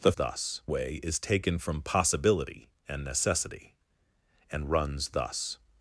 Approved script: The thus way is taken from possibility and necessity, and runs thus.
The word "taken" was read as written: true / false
true